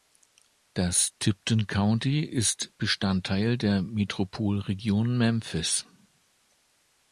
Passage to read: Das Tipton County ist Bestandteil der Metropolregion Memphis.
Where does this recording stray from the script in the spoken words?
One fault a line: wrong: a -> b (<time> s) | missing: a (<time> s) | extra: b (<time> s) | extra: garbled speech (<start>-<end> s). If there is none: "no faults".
no faults